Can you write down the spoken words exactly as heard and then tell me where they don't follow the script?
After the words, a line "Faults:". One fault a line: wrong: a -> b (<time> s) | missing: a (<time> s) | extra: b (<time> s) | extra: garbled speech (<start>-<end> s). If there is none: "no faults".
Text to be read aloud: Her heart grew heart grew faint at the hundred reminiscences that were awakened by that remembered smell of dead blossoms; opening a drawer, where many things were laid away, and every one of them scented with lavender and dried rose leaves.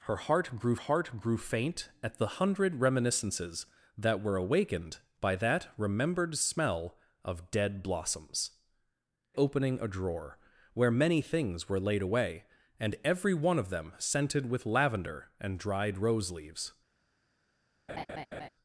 Her heart grew heart grew faint at the hundred reminiscences that were awakened by that remembered smell of dead blossoms; opening a drawer, where many things were laid away, and every one of them scented with lavender and dried rose leaves.
Faults:
no faults